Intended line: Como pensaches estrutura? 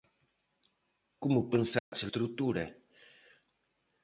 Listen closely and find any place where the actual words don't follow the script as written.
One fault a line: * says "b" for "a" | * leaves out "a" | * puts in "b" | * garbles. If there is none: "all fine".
all fine